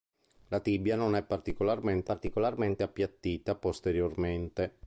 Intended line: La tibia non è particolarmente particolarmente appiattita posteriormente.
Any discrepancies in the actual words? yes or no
no